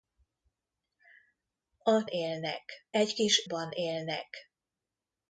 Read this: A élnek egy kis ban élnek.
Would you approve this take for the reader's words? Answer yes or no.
yes